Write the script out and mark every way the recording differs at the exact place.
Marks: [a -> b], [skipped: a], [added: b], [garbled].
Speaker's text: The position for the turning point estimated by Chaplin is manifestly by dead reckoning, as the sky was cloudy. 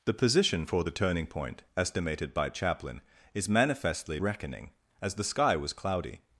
The position for the turning point estimated by Chaplin is manifestly [skipped: by dead] reckoning, as the sky was cloudy.